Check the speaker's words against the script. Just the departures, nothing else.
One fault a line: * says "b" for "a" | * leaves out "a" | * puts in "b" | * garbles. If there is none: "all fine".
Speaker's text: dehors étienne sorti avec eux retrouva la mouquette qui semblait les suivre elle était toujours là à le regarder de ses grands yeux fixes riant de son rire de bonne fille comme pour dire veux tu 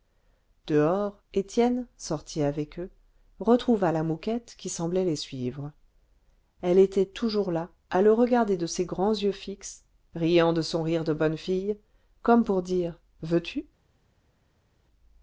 all fine